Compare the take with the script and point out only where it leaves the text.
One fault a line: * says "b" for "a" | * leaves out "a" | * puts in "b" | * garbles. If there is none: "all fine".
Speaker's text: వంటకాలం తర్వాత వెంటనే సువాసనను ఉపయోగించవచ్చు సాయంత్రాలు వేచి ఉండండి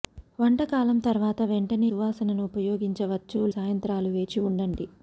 all fine